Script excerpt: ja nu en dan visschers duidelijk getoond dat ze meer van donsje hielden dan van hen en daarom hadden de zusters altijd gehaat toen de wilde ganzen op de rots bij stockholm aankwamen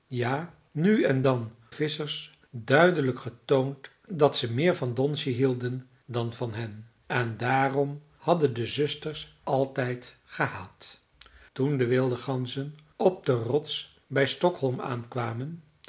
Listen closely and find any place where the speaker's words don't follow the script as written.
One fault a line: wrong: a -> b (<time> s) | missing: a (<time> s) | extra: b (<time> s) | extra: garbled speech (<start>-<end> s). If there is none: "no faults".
no faults